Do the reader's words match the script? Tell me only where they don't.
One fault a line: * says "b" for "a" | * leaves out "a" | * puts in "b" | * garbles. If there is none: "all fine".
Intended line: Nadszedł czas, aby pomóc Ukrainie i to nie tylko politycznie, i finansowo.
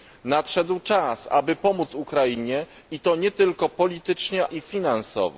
all fine